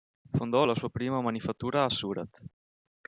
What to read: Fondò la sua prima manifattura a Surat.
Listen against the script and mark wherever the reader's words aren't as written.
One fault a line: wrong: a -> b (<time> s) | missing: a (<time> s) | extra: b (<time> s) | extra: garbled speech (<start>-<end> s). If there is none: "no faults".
no faults